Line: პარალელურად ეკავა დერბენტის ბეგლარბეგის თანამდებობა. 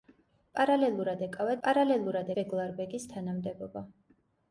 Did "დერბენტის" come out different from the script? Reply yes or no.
yes